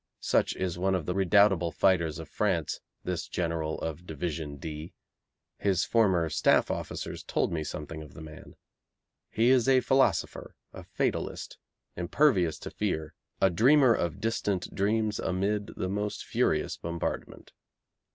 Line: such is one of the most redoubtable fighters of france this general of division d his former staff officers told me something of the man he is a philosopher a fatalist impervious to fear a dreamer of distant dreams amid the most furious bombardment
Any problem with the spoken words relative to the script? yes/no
yes